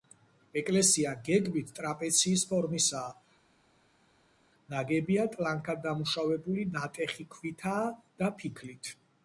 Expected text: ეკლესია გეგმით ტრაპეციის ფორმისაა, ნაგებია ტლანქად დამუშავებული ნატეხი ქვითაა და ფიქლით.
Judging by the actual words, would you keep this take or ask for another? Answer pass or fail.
pass